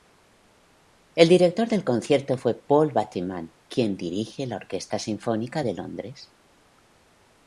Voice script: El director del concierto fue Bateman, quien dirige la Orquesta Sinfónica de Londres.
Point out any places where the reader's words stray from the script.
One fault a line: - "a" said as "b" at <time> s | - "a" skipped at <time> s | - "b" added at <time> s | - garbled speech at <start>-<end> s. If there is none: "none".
- "Paul" added at 2.5 s